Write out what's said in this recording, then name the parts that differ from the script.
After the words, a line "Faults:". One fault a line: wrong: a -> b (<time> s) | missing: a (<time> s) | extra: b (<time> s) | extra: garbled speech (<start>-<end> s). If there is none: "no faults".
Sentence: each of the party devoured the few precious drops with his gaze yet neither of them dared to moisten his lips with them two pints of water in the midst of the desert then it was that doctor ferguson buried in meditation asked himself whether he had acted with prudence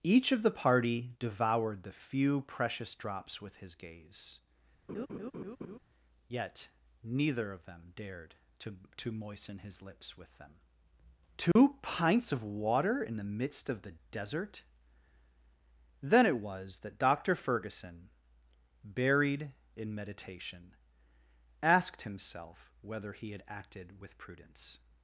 each of the party devoured the few precious drops with his gaze yet neither of them dared to to moisten his lips with them two pints of water in the midst of the desert then it was that doctor ferguson buried in meditation asked himself whether he had acted with prudence
Faults:
extra: to (9.0 s)